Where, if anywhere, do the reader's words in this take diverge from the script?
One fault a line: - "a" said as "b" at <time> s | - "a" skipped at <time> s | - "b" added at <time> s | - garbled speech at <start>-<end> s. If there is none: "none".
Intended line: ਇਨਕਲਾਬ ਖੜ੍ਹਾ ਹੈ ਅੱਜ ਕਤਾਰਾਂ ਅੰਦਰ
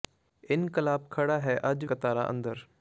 none